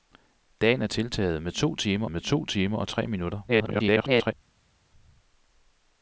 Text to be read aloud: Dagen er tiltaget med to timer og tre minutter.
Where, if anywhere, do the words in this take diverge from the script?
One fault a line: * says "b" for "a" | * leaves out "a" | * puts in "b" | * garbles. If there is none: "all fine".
* puts in "med to timer"
* garbles